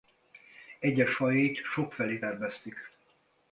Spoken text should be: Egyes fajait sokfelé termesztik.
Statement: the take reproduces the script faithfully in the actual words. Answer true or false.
true